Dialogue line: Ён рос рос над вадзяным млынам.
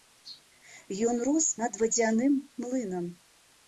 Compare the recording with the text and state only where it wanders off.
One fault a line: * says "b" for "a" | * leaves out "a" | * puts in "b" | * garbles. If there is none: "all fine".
* leaves out "рос"